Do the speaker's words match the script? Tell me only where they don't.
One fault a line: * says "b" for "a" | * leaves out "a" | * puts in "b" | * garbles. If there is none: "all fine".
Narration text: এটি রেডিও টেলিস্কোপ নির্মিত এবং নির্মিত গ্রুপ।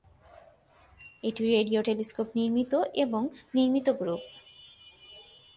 all fine